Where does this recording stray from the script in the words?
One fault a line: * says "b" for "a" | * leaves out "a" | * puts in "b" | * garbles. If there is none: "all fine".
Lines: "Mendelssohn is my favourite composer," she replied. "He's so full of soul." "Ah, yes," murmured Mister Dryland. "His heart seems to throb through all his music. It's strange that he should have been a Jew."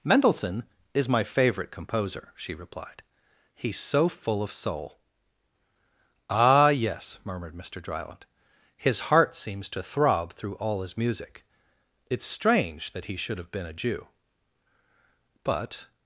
* puts in "But"